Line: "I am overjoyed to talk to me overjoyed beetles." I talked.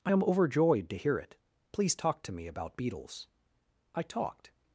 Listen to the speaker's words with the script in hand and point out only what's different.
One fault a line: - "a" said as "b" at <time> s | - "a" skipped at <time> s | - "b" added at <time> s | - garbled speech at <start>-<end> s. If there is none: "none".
- "hear it Please" added at 1.0 s
- "overjoyed" said as "about" at 2.5 s